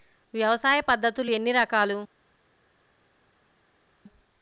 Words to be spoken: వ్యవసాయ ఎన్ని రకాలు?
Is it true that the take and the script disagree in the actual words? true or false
true